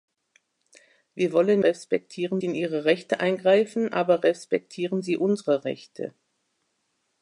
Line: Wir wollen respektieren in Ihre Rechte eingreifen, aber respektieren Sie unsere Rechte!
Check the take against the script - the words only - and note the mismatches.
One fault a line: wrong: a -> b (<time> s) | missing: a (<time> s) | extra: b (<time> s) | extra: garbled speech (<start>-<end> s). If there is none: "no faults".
no faults